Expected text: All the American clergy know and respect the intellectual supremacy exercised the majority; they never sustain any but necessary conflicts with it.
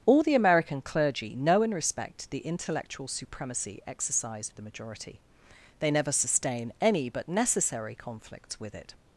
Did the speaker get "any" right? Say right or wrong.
right